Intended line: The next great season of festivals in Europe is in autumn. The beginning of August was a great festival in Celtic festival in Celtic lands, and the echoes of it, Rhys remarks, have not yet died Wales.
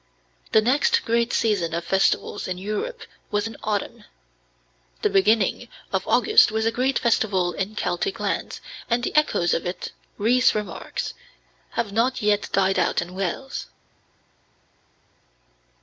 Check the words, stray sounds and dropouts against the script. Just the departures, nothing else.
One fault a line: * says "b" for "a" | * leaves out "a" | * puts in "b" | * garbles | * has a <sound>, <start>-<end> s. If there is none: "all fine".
* says "was" for "is"
* leaves out "festival in Celtic"
* puts in "out in"